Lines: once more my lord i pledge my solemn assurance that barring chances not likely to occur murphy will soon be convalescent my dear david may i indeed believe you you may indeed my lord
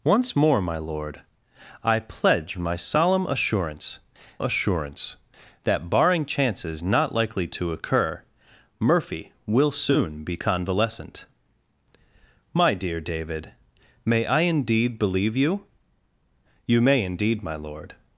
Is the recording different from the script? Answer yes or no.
yes